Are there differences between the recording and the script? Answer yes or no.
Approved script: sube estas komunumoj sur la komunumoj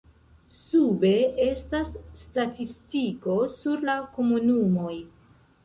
yes